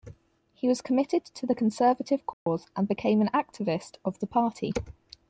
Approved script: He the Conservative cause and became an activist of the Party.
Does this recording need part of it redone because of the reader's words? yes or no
yes